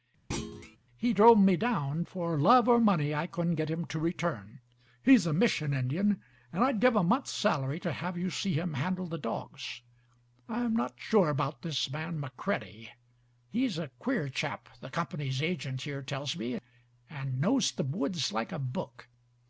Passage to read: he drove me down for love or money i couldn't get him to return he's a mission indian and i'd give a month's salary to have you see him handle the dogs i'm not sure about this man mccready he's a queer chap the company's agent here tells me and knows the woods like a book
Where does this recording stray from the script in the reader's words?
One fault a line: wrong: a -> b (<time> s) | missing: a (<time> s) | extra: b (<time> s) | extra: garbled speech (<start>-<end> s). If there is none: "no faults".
no faults